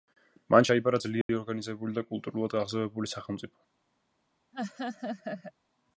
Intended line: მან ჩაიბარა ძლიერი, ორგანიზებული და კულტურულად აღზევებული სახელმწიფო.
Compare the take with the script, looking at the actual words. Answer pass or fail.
pass